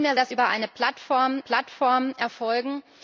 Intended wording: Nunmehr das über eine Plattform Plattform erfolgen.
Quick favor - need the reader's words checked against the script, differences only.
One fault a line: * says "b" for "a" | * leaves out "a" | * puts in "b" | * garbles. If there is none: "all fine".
all fine